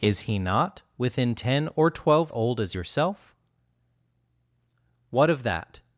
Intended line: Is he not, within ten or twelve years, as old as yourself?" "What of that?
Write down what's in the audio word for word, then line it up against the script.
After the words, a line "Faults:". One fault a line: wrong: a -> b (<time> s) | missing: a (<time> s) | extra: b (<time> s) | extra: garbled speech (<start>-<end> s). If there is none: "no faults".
Is he not, within ten or twelve old as yourself?" "What of that?
Faults:
missing: years as (2.3 s)